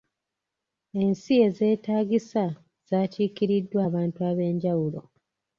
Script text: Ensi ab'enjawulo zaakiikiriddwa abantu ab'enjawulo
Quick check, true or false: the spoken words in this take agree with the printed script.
false